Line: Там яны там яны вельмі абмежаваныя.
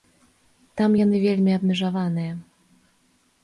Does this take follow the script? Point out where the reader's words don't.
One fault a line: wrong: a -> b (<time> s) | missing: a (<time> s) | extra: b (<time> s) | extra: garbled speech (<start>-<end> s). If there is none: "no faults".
missing: там яны (1.2 s)